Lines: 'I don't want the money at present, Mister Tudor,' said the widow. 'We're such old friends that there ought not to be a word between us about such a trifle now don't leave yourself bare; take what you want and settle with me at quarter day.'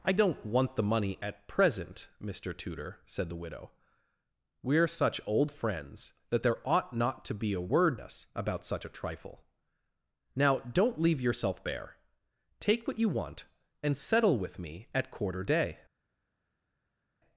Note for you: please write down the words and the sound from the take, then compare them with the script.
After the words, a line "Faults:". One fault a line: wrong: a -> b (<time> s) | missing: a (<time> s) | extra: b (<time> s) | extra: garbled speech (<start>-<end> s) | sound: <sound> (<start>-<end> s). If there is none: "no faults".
'I don't want the money at present, Mister Tudor,' said the widow. 'We're such old friends that there ought not to be a word us about such a trifle now don't leave yourself bare; take what you want and settle with me at quarter day.'
Faults:
missing: between (8.0 s)